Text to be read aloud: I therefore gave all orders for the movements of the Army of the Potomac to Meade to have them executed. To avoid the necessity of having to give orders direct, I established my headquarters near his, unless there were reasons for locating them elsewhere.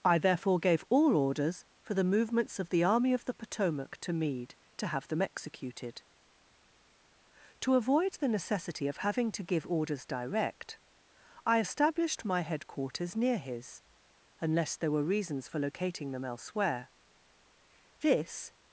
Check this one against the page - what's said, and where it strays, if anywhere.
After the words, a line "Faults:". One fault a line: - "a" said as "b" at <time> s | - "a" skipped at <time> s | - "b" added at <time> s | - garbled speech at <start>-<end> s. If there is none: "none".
I therefore gave all orders for the movements of the Army of the Potomac to Meade to have them executed. To avoid the necessity of having to give orders direct, I established my headquarters near his, unless there were reasons for locating them elsewhere. This
Faults:
- "This" added at 18.0 s